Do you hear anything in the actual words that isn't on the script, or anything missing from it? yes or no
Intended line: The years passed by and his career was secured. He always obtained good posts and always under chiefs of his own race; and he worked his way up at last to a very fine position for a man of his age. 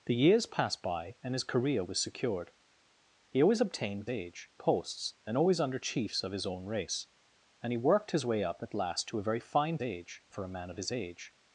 yes